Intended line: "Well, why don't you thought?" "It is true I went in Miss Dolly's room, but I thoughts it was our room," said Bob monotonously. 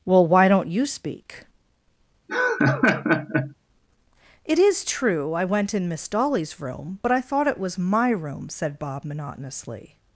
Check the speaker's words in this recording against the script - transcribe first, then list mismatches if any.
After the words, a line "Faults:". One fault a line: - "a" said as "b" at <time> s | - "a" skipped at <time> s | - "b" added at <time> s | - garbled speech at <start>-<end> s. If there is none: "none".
"Well, why don't you speak?" "It is true I went in Miss Dolly's room, but I thought it was my room," said Bob monotonously.
Faults:
- "thought" said as "speak" at 0.8 s
- "thoughts" said as "thought" at 7.2 s
- "our" said as "my" at 7.8 s